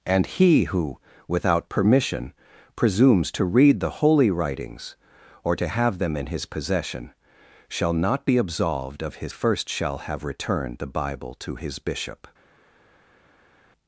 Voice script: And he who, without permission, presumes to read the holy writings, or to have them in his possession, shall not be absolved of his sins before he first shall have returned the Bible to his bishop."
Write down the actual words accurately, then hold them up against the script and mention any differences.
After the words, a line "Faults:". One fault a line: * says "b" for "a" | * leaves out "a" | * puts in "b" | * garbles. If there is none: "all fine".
And he who, without permission, presumes to read the holy writings, or to have them in his possession, shall not be absolved of his first shall have returned the Bible to his bishop."
Faults:
* leaves out "sins before he"